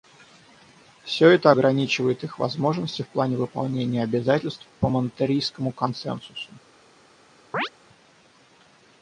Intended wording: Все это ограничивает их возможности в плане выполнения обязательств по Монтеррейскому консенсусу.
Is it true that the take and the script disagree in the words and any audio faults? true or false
true